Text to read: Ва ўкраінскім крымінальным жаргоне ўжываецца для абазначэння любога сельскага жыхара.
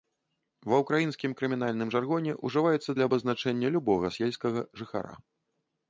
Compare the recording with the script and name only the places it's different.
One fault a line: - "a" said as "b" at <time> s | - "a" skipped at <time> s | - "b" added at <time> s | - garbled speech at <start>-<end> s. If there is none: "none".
none